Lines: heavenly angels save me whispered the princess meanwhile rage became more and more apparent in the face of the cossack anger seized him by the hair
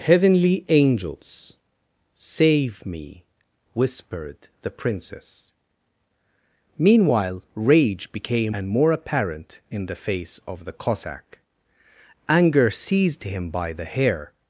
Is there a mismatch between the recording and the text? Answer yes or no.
yes